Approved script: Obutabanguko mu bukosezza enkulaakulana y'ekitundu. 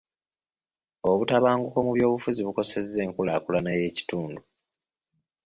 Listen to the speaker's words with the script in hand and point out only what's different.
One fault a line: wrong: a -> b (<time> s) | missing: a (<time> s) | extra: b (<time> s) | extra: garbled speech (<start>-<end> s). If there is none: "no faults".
extra: byobufuzi (2.0 s)